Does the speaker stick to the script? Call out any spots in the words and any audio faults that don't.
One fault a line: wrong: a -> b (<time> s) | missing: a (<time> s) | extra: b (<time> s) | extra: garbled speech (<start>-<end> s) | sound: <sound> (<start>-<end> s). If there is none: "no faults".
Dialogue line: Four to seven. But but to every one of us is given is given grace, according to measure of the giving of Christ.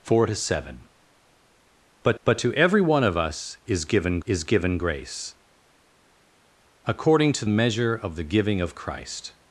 no faults